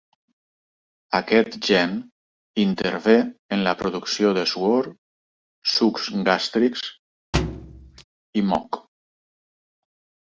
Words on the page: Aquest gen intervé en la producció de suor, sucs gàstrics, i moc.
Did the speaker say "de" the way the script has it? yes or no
yes